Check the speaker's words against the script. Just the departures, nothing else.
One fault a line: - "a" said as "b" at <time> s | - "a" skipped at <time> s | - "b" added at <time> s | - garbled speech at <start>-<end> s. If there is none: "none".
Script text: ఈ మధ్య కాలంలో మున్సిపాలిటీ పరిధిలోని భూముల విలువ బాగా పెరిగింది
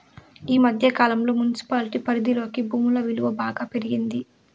none